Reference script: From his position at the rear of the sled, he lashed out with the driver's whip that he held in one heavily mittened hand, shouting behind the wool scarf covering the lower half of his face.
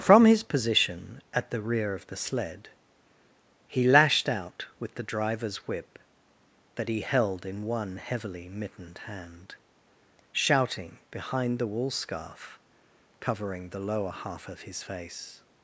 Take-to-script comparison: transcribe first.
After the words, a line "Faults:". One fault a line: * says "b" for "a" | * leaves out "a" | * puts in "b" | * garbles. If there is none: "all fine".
From his position at the rear of the sled, he lashed out with the driver's whip that he held in one heavily mittened hand, shouting behind the wool scarf covering the lower half of his face.
Faults:
all fine